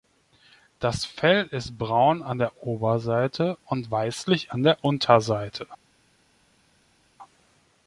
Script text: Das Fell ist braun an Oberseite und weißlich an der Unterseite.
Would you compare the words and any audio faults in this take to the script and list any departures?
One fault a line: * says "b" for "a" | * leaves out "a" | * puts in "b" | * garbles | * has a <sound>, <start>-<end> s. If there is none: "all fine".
* puts in "der"